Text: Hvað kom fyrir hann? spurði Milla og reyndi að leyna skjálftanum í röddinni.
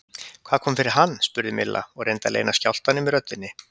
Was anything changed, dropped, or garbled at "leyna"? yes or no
no